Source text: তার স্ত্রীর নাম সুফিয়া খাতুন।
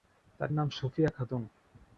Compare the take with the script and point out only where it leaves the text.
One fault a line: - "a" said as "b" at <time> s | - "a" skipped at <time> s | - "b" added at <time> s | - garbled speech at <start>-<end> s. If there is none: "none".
- "স্ত্রীর" skipped at 0.5 s